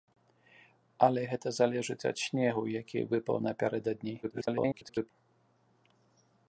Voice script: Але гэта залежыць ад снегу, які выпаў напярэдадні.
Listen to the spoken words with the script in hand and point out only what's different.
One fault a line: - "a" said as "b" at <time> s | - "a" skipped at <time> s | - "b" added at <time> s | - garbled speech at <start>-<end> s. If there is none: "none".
- garbled speech at 4.2-5.1 s